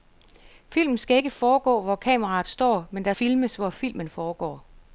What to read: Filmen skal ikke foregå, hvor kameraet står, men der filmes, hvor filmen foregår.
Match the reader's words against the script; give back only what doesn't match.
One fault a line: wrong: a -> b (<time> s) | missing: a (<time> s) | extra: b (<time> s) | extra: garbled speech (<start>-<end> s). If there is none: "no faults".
no faults